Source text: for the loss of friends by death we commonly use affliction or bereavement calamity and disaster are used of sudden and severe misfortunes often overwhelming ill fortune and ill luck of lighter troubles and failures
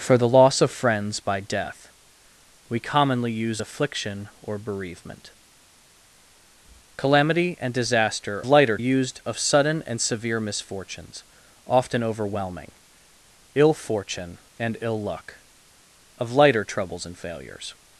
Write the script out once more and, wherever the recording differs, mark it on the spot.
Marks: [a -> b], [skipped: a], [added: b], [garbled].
for the loss of friends by death we commonly use affliction or bereavement calamity and disaster [are -> lighter] used of sudden and severe misfortunes often overwhelming ill fortune and ill luck of lighter troubles and failures